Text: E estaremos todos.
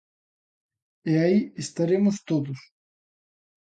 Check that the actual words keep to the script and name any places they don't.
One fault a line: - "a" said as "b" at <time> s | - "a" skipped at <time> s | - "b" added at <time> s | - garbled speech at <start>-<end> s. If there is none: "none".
- "aí" added at 1.2 s